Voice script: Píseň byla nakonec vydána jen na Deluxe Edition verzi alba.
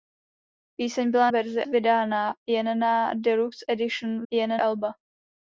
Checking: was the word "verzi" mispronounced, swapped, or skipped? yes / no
yes